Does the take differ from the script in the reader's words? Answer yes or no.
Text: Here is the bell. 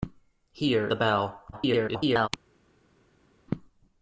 yes